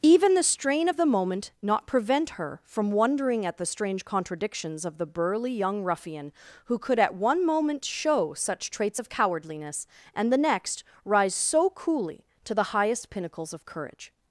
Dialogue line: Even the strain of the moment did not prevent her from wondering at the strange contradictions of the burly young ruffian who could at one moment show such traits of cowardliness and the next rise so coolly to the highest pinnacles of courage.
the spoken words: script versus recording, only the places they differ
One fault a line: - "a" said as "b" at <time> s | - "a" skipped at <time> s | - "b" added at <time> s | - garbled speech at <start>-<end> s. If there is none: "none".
- "did" skipped at 1.5 s